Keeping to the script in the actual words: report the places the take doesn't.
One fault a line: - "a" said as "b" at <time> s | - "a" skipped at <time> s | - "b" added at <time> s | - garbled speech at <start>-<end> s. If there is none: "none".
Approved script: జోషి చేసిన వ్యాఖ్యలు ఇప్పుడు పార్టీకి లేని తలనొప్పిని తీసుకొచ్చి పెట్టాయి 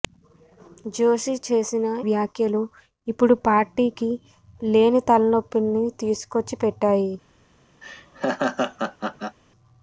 none